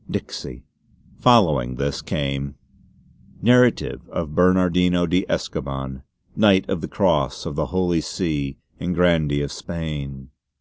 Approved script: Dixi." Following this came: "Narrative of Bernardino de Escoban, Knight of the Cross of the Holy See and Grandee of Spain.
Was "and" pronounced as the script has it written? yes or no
yes